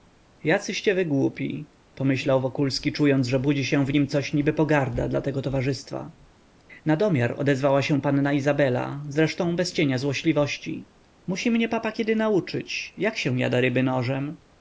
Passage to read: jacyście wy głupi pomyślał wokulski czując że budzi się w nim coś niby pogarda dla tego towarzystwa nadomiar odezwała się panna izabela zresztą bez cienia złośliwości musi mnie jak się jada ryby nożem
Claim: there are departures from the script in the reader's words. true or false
true